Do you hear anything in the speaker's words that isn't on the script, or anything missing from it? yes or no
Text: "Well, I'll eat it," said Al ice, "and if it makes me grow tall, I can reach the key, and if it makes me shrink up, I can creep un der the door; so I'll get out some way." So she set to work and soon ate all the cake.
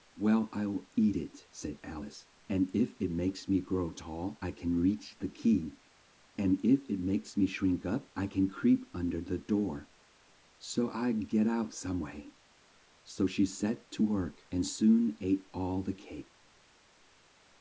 no